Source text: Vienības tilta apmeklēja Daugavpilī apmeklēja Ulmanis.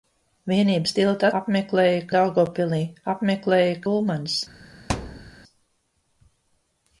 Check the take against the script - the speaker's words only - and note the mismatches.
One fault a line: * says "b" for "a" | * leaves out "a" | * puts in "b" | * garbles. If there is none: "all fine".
all fine